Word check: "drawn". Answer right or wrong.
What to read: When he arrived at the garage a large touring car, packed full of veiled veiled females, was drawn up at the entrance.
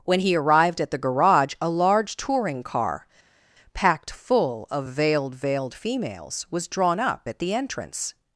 right